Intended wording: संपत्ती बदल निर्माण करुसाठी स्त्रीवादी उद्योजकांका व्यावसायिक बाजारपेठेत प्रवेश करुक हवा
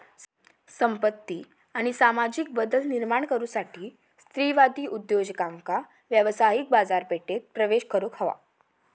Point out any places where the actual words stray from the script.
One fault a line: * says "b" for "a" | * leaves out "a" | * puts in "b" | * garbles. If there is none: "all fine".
* puts in "आणि सामाजिक"